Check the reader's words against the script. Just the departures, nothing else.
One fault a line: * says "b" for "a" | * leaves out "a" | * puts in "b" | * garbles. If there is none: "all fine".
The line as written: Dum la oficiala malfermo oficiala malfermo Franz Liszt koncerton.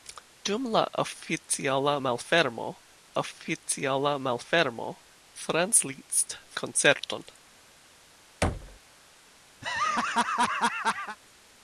all fine